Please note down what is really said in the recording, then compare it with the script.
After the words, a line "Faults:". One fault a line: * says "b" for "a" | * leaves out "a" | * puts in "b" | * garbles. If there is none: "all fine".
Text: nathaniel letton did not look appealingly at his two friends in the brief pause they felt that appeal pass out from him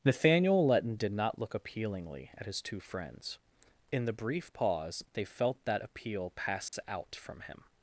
nathaniel letton did not look appealingly at his two friends in the brief pause they felt that appeal pass out from him
Faults:
all fine